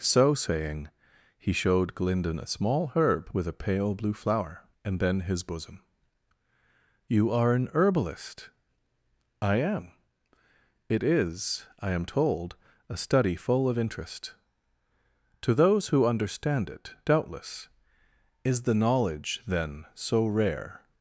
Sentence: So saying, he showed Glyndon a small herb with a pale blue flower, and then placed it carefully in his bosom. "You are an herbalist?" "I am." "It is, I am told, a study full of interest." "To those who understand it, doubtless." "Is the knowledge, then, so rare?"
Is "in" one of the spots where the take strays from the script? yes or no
yes